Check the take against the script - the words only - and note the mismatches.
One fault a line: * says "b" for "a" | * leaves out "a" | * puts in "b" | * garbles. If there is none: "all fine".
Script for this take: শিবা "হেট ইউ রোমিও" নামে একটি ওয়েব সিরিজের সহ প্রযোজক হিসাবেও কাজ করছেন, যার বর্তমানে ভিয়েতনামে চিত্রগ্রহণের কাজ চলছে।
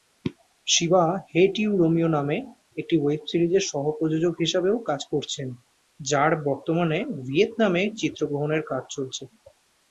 all fine